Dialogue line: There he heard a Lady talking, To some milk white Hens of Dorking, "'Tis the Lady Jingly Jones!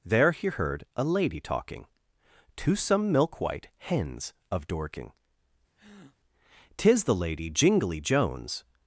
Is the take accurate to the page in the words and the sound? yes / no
no